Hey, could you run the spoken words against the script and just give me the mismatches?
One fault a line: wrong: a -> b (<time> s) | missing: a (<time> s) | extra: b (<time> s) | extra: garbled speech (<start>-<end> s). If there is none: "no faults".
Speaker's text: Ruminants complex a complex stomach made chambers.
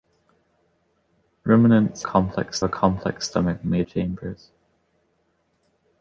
no faults